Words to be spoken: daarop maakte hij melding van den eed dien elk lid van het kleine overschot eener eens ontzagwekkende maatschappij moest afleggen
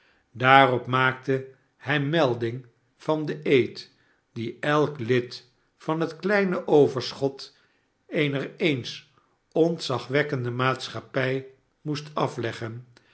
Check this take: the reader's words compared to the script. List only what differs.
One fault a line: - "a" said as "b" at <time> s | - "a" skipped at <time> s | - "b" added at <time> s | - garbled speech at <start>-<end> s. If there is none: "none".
none